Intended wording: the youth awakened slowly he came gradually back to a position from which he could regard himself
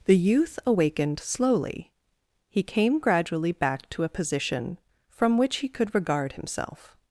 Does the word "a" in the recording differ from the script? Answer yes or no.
no